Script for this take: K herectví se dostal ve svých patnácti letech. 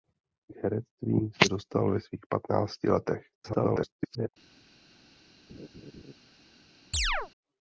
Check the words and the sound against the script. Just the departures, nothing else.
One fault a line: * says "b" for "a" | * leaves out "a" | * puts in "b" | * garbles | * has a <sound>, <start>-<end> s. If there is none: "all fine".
* garbles
* has a laugh, 5.5-6.1 s
* has a chirp, 6.9-7.3 s